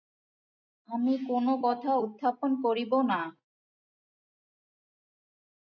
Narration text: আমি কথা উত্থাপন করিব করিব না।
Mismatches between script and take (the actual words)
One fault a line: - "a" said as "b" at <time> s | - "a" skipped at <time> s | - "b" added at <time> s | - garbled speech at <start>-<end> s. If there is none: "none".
- "কোনো" added at 1.3 s
- "করিব" skipped at 2.9 s